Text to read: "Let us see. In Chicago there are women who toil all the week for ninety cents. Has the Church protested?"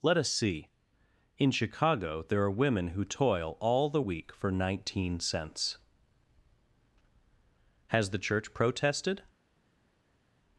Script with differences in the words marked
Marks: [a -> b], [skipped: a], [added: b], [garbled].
"Let us see. In Chicago there are women who toil all the week for [ninety -> nineteen] cents. Has the Church protested?"